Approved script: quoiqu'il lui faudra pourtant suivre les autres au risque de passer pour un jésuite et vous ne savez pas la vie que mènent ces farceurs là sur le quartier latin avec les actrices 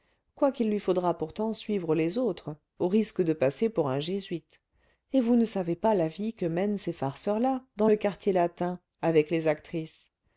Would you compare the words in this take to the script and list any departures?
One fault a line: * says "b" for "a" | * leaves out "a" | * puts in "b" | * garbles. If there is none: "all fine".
* says "dans" for "sur"